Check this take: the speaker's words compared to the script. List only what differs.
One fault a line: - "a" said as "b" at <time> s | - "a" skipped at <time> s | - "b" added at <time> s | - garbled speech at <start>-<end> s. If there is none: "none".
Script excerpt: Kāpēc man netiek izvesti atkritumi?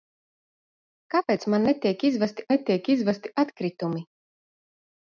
- "netiek izvesti" added at 2.5 s